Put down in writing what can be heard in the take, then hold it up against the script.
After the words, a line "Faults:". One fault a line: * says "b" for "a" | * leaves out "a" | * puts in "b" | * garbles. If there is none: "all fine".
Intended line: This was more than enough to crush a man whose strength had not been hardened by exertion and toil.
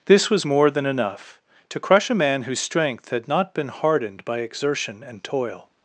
This was more than enough to crush a man whose strength had not been hardened by exertion and toil.
Faults:
all fine